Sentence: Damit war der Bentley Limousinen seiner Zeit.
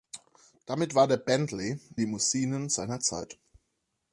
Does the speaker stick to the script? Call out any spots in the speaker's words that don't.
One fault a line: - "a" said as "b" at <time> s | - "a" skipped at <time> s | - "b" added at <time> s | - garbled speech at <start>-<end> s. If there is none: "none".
none